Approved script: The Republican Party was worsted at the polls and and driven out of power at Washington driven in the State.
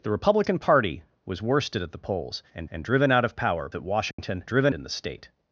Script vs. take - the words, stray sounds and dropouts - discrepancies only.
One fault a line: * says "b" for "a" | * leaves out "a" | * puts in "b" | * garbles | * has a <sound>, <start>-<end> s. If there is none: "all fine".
* has a dropout, 4.1-4.2 s